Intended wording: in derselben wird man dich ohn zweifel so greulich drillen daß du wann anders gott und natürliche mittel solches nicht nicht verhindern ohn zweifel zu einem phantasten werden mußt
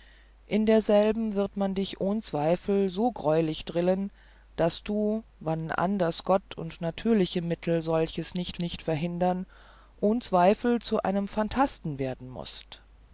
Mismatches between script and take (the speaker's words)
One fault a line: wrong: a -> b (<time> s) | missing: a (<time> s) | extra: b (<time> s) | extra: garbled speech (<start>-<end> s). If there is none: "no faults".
no faults